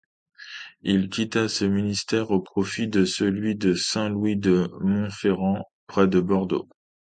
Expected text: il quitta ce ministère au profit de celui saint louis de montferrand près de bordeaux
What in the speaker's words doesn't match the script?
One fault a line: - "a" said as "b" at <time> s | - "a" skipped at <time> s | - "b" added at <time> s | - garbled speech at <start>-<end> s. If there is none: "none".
- "de" added at 3.5 s